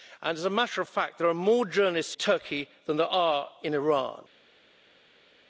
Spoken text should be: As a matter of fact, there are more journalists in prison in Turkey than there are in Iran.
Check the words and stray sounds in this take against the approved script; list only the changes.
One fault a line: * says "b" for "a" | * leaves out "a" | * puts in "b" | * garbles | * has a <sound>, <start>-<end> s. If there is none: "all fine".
* leaves out "in prison in"